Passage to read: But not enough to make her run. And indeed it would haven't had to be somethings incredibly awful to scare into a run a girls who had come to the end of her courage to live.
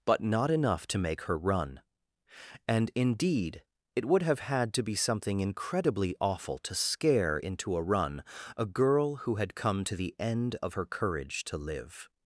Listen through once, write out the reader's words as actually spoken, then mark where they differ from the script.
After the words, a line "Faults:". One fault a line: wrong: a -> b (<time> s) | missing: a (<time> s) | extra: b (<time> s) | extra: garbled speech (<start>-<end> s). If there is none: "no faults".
But not enough to make her run. And indeed it would have had to be something incredibly awful to scare into a run a girl who had come to the end of her courage to live.
Faults:
wrong: haven't -> have (4.2 s)
wrong: somethings -> something (5.0 s)
wrong: girls -> girl (8.7 s)